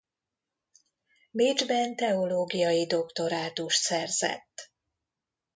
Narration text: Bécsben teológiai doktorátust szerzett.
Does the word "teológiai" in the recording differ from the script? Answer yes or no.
no